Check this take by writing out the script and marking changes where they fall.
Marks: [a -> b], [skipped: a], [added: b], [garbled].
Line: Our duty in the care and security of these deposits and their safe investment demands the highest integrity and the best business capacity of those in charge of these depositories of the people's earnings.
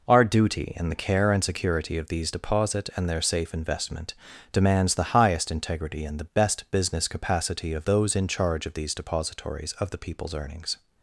Our duty in the care and security of these [deposits -> deposit] and their safe investment demands the highest integrity and the best business capacity of those in charge of these depositories of the people's earnings.